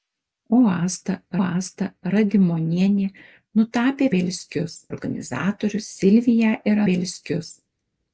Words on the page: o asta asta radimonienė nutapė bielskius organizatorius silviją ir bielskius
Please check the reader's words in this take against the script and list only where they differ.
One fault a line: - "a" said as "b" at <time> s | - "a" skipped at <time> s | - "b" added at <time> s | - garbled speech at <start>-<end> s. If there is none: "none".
none